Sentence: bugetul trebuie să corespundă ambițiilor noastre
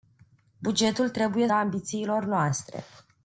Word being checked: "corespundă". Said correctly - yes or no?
no